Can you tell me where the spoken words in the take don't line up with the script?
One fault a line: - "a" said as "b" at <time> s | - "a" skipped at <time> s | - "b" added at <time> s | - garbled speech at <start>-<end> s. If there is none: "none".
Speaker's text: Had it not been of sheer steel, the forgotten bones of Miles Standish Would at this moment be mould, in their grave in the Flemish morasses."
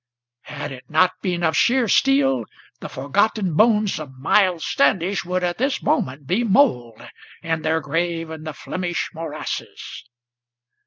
none